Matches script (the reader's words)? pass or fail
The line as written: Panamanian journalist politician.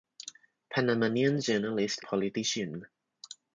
pass